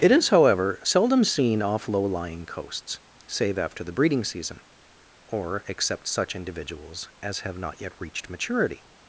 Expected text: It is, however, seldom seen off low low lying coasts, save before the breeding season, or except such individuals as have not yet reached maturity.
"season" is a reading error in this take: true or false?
false